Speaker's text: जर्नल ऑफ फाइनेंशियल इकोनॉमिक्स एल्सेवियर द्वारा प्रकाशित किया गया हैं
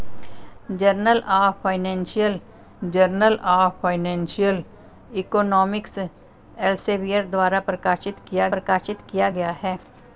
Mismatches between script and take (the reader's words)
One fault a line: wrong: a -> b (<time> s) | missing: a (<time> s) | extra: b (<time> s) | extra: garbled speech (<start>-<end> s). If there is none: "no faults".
extra: जर्नल ऑफ फाइनेंशियल (2.9 s)
extra: प्रकाशित किया (8.5 s)